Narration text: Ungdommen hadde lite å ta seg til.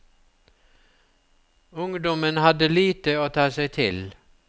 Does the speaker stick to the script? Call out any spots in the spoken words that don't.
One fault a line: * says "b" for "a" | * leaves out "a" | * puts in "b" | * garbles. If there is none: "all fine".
all fine